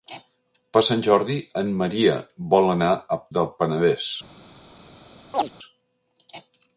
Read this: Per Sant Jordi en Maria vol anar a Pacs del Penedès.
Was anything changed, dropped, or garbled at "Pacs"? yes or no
yes